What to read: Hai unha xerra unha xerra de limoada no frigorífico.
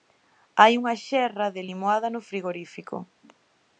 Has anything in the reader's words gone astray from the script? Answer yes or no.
yes